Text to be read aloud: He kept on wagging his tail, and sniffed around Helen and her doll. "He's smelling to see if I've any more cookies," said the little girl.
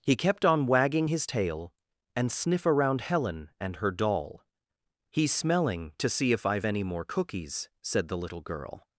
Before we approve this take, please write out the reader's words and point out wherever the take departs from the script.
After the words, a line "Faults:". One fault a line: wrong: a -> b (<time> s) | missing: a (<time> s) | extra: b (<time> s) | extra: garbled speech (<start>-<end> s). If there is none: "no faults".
He kept on wagging his tail, and sniff around Helen and her doll. "He's smelling to see if I've any more cookies," said the little girl.
Faults:
wrong: sniffed -> sniff (2.3 s)